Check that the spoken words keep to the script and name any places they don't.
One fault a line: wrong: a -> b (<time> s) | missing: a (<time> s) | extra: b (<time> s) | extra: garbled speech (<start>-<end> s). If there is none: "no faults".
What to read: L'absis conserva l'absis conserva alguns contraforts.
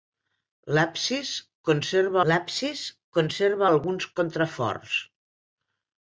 no faults